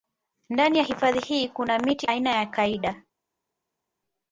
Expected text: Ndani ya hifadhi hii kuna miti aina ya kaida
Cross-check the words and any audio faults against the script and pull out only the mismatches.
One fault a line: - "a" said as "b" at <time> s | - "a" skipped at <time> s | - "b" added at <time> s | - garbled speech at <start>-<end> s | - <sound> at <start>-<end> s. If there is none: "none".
none